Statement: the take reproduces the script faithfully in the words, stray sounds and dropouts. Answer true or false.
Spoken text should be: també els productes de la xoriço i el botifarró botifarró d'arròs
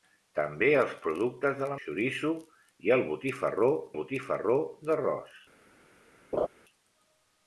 false